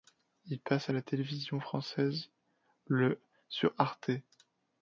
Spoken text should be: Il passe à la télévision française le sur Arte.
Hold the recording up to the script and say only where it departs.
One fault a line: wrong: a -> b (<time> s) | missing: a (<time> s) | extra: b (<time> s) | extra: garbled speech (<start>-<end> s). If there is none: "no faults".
no faults